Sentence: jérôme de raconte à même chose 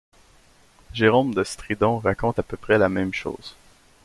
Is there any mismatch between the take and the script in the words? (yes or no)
yes